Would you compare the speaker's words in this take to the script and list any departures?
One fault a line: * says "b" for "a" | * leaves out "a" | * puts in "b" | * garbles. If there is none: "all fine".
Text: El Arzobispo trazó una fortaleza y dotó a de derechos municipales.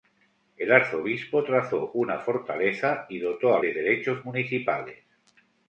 all fine